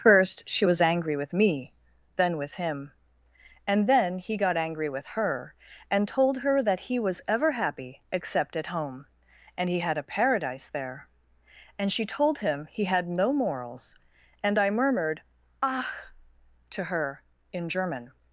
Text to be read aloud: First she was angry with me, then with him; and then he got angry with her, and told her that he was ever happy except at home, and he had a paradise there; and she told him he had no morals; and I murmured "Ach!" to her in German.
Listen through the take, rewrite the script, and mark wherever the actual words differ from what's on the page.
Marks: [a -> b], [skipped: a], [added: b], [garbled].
First she was angry with me, then with him; and then he got angry with her, and told her that he was ever happy except at home, and he had a paradise there; and she told him he had no morals; and I murmured "Ach!" to her in German.